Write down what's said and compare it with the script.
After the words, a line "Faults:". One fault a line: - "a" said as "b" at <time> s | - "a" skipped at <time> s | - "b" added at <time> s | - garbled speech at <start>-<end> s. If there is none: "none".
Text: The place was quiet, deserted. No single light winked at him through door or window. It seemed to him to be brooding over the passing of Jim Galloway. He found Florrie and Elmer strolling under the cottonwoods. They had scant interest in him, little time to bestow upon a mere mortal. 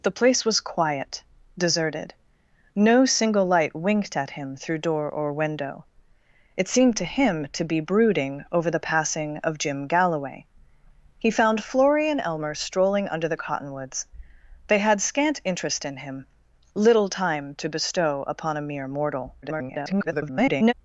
The place was quiet, deserted. No single light winked at him through door or window. It seemed to him to be brooding over the passing of Jim Galloway. He found Florrie and Elmer strolling under the cottonwoods. They had scant interest in him, little time to bestow upon a mere mortal. [garbled]
Faults:
- garbled speech at 19.4-20.7 s